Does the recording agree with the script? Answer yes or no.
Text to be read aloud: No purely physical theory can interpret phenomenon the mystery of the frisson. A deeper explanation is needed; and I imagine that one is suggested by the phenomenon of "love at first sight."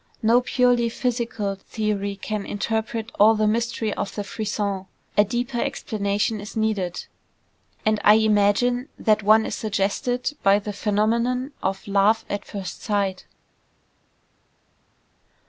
no